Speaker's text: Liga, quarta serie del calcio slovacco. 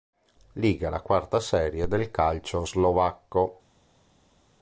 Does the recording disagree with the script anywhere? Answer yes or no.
yes